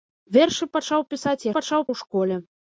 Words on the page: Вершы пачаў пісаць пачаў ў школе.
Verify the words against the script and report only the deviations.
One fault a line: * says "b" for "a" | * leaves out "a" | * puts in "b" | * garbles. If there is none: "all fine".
all fine